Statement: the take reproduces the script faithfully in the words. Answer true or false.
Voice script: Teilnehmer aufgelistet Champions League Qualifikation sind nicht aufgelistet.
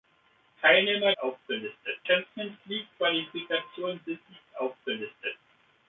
true